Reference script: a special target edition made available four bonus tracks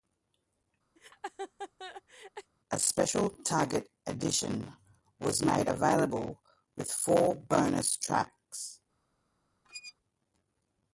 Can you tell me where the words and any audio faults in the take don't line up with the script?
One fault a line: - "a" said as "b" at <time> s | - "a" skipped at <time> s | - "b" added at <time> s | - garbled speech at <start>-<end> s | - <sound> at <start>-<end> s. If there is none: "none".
- laugh at 1.0-2.5 s
- "was" added at 5.2 s
- "with" added at 6.8 s
- squeak at 9.6-9.9 s